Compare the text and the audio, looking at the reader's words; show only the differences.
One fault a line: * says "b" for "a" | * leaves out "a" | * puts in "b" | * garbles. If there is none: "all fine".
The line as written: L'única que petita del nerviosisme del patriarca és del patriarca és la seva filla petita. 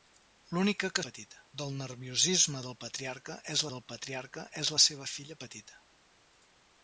all fine